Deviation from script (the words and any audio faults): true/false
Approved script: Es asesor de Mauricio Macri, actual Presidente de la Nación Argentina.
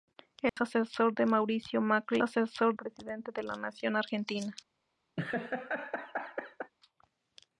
true